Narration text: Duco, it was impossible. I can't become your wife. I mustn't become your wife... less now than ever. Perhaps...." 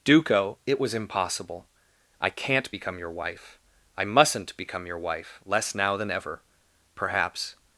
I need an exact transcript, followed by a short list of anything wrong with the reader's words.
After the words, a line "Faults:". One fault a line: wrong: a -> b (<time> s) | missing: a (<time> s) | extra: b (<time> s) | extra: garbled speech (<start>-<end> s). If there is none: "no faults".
Duco, it was impossible. I can't become your wife. I mustn't become your wife... less now than ever. Perhaps...."
Faults:
no faults